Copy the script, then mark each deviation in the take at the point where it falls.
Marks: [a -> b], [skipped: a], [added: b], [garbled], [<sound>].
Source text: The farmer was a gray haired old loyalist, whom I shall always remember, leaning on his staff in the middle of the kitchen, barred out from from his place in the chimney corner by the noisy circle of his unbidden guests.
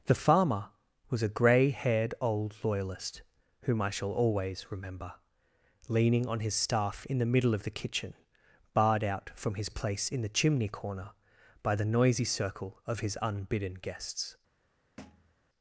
The farmer was a gray haired old loyalist, whom I shall always remember, leaning on his staff in the middle of the kitchen, barred out from [skipped: from] his place in the chimney corner by the noisy circle of his unbidden guests. [thud]